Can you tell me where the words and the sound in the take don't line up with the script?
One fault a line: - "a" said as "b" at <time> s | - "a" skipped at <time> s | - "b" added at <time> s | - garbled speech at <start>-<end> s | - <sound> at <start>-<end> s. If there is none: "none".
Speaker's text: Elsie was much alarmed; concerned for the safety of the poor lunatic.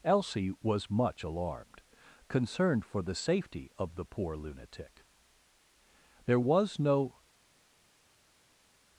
- "There was no" added at 6.3 s